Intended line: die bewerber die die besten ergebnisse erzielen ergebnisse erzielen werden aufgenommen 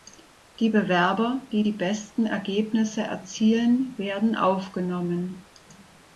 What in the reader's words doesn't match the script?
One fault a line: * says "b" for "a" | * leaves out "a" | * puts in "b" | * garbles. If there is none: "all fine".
* leaves out "ergebnisse erzielen"